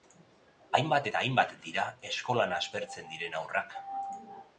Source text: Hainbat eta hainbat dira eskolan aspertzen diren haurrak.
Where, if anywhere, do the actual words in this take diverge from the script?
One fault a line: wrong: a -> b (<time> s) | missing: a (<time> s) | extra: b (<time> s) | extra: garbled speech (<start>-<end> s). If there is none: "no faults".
no faults